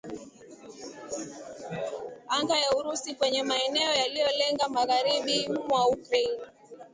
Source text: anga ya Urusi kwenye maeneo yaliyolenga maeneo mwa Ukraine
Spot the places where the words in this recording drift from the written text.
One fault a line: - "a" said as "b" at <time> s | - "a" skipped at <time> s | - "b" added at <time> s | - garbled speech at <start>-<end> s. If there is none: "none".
- "maeneo" said as "magharibi" at 4.7 s